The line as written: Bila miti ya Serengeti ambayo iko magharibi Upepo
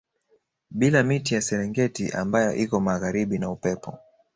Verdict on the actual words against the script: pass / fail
fail